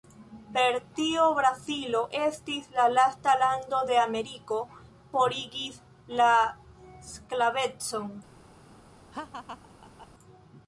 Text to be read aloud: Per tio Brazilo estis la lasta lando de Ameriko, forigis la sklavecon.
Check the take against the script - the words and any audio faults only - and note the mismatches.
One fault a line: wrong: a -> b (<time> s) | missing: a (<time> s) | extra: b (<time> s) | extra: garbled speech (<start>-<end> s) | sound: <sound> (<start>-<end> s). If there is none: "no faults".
sound: laugh (9.1-10.1 s)